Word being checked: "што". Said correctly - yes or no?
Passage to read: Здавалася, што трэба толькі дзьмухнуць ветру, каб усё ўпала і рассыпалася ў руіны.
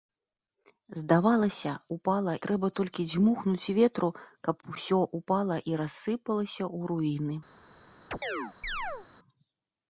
no